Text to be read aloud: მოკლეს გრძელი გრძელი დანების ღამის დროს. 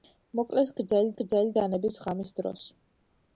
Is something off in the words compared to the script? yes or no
no